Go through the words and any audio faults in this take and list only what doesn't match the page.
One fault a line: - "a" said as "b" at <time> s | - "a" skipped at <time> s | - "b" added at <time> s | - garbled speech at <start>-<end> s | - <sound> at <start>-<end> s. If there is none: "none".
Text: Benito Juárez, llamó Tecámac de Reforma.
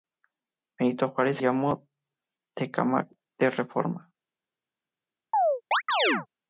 - chirp at 5.3-6.3 s